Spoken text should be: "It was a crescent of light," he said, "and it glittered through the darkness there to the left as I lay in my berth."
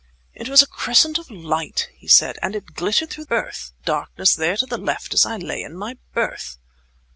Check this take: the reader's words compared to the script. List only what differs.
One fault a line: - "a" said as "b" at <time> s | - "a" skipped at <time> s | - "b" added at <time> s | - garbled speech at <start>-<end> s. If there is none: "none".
- "the" said as "berth" at 3.3 s